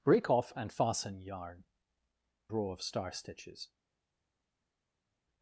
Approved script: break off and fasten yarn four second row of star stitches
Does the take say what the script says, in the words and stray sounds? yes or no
no